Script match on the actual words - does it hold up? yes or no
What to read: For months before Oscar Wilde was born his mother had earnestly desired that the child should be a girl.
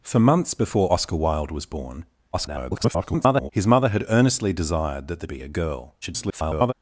no